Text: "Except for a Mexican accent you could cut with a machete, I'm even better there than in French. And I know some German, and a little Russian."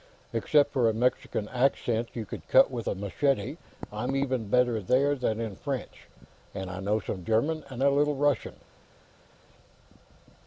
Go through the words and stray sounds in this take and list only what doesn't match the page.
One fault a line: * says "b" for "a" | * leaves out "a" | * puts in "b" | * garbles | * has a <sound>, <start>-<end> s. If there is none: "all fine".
all fine